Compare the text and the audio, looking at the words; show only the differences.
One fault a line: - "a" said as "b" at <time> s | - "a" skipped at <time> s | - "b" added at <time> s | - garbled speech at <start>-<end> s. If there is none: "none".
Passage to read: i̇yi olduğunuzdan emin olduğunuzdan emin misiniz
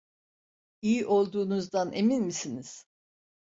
- "olduğunuzdan emin" skipped at 2.2 s